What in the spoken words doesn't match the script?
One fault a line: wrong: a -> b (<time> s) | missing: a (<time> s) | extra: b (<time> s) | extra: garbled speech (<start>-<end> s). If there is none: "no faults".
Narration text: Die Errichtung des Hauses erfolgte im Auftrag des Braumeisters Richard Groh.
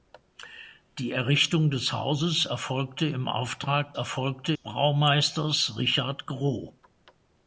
wrong: des -> erfolgte (3.9 s)